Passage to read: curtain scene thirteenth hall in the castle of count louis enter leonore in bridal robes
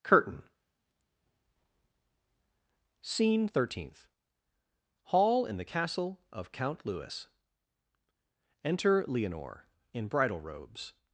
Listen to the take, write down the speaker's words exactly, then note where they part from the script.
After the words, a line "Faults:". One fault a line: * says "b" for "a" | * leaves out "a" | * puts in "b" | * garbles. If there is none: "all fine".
curtain scene thirteenth hall in the castle of count louis enter leonore in bridal robes
Faults:
all fine